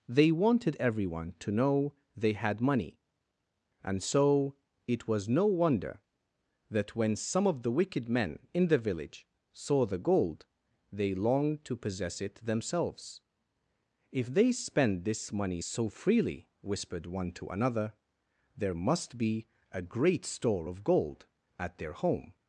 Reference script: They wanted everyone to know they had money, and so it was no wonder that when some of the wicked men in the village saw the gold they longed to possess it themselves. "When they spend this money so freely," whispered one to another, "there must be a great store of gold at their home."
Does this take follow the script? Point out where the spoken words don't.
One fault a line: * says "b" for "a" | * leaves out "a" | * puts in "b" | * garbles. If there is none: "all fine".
* says "If" for "When"